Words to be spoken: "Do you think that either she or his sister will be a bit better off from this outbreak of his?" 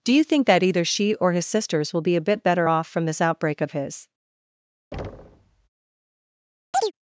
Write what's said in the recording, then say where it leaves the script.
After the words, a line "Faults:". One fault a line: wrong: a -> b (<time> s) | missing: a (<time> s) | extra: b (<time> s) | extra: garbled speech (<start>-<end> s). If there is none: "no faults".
"Do you think that either she or his sisters will be a bit better off from this outbreak of his?"
Faults:
wrong: sister -> sisters (1.4 s)